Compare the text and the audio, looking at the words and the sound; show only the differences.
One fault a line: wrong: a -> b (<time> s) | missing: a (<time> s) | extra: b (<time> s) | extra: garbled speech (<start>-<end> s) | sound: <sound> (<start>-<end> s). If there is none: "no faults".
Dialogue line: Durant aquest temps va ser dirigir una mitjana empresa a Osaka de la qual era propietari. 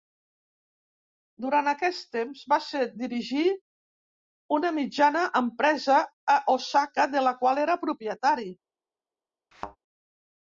sound: thud (9.5-9.8 s)